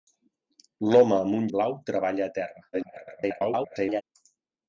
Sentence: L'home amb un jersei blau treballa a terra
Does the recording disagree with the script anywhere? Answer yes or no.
yes